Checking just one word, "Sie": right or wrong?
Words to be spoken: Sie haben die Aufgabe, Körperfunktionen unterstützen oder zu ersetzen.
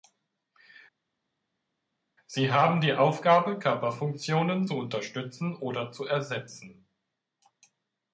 right